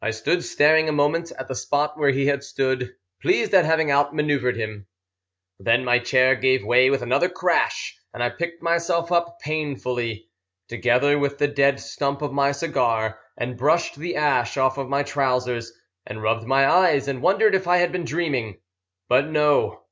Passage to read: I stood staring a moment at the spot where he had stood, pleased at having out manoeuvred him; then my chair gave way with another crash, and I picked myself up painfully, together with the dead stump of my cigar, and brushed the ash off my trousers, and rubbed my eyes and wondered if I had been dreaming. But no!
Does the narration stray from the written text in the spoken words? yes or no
no